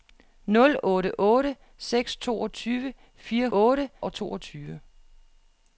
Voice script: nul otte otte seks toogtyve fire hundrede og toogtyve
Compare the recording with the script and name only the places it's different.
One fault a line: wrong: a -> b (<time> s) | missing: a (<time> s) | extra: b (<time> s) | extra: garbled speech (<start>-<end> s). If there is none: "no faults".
wrong: hundrede -> otte (3.5 s)